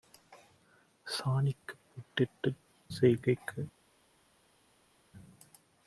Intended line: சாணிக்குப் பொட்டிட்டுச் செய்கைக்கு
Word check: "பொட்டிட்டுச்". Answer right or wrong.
right